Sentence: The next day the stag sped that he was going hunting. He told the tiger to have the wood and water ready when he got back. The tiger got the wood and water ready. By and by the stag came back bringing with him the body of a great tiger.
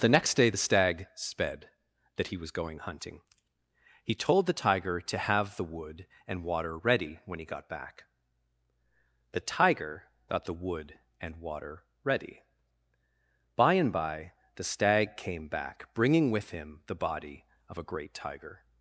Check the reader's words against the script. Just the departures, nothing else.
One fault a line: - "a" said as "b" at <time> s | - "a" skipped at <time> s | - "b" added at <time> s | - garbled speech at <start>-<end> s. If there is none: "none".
none